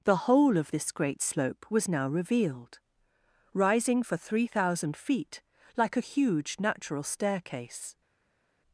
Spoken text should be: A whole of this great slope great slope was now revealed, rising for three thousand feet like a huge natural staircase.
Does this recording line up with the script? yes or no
no